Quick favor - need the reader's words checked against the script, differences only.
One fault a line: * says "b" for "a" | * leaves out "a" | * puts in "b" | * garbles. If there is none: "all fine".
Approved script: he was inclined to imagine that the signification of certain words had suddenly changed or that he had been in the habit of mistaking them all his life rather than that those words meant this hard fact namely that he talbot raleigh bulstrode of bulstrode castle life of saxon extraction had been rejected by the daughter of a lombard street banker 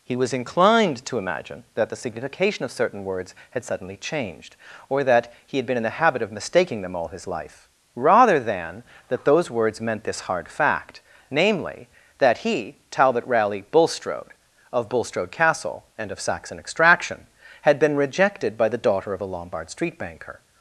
* says "and" for "life"